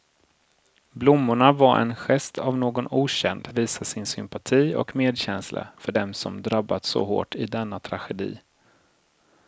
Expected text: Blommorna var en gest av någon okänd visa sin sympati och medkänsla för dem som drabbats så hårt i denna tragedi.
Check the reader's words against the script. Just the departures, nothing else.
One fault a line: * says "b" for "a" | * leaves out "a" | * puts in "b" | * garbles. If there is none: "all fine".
all fine